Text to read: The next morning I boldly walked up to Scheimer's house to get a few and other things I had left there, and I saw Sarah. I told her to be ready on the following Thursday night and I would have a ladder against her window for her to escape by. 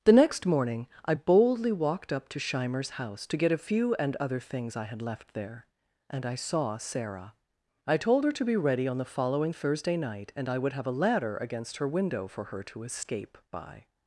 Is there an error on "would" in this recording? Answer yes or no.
no